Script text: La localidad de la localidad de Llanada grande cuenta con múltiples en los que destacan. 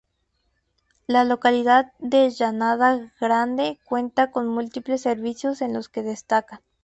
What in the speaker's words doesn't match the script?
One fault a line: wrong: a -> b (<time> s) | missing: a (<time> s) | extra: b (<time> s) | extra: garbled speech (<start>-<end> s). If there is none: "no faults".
missing: la localidad de (2.3 s)
extra: servicios (5.0 s)